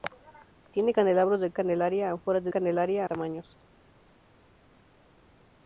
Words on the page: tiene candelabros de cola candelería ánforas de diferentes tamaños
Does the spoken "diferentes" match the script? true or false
false